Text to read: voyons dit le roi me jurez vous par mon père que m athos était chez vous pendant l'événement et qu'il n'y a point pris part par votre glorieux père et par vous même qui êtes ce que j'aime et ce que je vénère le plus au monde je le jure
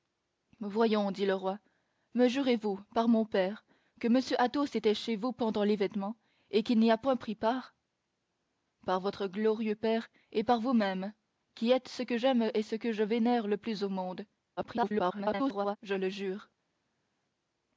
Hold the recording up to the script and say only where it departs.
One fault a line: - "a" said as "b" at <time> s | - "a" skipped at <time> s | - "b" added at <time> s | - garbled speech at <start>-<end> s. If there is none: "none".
- garbled speech at 14.6-15.8 s